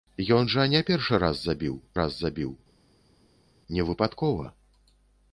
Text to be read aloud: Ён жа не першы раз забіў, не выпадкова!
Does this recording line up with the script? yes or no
no